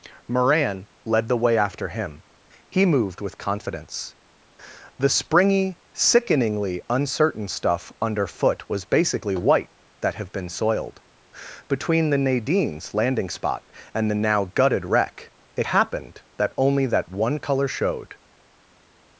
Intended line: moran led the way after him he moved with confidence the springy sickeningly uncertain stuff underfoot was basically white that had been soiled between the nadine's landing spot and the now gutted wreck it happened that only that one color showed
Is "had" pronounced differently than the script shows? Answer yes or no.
yes